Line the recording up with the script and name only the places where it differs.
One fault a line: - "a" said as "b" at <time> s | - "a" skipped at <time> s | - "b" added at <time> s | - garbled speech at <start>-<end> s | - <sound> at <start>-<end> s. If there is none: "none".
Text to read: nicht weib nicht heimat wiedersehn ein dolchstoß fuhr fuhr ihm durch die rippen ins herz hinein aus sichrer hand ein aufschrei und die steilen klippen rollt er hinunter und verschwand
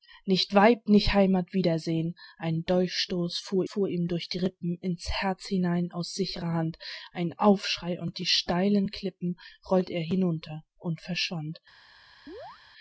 - chirp at 12.3-12.6 s